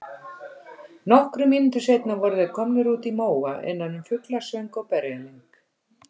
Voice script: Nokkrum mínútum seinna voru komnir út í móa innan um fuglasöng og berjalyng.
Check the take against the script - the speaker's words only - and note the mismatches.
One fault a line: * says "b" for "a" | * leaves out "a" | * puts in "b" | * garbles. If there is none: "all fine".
* puts in "þeir"